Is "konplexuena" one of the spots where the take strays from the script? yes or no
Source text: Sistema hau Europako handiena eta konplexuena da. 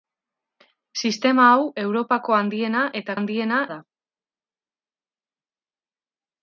yes